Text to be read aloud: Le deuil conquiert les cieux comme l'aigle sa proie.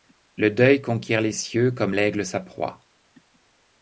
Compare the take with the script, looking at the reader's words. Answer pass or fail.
pass